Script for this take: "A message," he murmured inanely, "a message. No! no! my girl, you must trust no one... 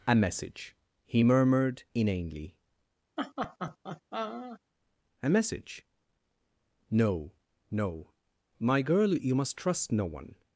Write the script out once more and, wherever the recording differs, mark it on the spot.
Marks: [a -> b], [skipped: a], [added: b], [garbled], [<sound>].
"A message," he murmured inanely, [laugh] "a message. No! no! my girl, you must trust no one...